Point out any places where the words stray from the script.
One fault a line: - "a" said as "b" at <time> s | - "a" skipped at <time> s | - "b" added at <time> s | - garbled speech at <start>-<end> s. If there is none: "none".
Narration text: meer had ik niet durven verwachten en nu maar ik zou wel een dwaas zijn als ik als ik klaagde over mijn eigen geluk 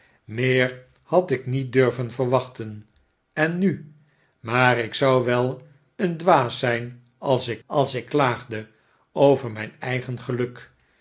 none